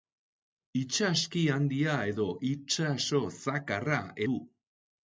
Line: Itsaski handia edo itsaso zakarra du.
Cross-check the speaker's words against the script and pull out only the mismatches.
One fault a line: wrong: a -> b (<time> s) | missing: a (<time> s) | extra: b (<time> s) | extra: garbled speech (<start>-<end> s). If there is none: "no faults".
no faults